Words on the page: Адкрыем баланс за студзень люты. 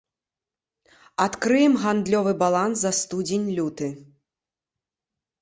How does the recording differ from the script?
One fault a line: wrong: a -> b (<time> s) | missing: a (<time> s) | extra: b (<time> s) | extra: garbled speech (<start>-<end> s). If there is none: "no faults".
extra: гандлёвы (1.8 s)